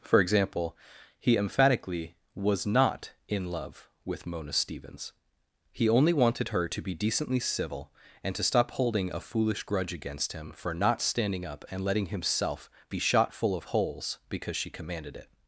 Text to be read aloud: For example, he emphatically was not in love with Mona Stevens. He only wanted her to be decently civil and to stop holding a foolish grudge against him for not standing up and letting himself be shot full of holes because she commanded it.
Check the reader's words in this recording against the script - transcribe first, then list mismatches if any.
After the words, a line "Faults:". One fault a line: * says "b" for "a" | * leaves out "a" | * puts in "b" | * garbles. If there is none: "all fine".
For example, he emphatically was not in love with Mona Stevens. He only wanted her to be decently civil and to stop holding a foolish grudge against him for not standing up and letting himself be shot full of holes because she commanded it.
Faults:
all fine